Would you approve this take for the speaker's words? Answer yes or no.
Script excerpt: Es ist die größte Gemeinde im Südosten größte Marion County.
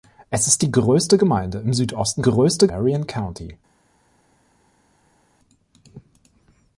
yes